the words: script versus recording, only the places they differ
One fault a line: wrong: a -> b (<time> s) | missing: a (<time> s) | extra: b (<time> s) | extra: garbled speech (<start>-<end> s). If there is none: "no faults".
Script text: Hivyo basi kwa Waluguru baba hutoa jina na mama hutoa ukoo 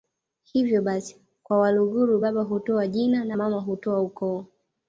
no faults